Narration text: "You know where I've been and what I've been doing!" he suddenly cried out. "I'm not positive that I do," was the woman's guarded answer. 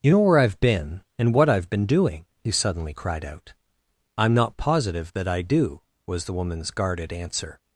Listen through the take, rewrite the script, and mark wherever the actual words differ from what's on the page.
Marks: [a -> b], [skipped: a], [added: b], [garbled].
"You know where I've been and what I've been doing!" he suddenly cried out. "I'm not positive that I do," was the woman's guarded answer.